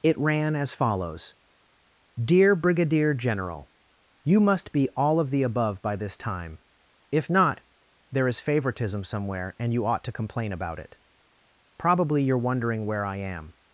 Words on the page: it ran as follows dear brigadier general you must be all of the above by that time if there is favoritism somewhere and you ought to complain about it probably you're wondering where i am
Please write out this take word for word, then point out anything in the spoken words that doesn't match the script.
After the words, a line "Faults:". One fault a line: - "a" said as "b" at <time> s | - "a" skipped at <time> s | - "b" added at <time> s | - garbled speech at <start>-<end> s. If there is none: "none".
it ran as follows dear brigadier general you must be all of the above by this time if not there is favoritism somewhere and you ought to complain about it probably you're wondering where i am
Faults:
- "that" said as "this" at 6.0 s
- "not" added at 7.3 s